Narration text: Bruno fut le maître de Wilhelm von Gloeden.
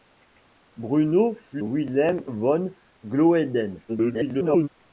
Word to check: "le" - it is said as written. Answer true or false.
false